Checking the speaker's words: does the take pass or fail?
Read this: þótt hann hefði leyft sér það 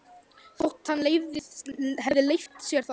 pass